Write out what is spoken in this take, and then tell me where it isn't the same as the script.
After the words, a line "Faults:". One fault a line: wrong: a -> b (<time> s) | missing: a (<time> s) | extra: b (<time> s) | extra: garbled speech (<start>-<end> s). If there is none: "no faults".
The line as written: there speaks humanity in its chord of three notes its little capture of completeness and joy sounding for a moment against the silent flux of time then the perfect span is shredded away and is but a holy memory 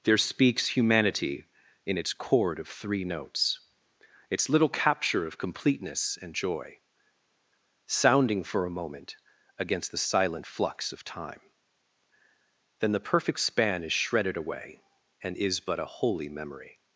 there speaks humanity in its chord of three notes its little capture of completeness and joy sounding for a moment against the silent flux of time then the perfect span is shredded away and is but a holy memory
Faults:
no faults